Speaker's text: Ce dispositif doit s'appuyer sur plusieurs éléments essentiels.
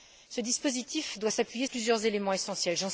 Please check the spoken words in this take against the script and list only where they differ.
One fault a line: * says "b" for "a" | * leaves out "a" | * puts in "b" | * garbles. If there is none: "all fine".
* leaves out "sur"